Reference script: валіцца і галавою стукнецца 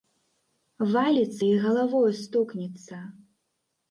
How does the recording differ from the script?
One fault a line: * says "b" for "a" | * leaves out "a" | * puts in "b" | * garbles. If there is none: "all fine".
all fine